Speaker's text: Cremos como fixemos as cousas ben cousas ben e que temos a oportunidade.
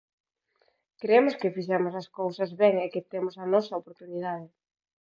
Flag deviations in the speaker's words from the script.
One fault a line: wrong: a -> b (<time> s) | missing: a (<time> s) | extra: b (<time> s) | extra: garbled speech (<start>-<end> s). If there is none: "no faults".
wrong: como -> que (1.4 s)
missing: cousas ben (2.8 s)
extra: nosa (3.5 s)